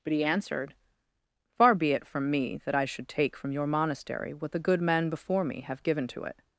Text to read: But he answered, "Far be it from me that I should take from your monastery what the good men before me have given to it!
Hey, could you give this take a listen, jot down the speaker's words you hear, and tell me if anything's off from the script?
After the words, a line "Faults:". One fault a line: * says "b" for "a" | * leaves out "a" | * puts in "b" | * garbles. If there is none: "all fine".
But he answered, "Far be it from me that I should take from your monastery what the good men before me have given to it!
Faults:
all fine